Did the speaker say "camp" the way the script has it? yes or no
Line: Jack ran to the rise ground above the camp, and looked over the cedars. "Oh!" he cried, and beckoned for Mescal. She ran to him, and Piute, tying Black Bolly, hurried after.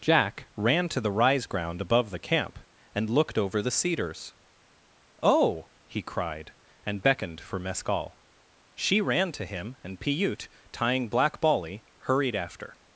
yes